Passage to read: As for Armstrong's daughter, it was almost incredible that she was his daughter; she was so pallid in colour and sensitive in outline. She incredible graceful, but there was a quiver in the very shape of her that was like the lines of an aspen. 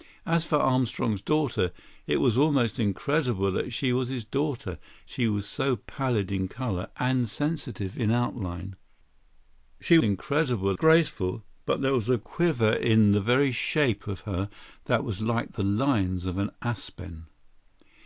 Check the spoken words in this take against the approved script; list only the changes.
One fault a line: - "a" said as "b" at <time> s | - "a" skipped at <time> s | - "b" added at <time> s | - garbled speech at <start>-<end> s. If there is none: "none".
none